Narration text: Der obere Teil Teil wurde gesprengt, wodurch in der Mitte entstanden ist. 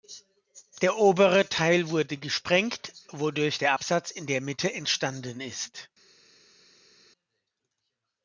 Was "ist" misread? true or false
false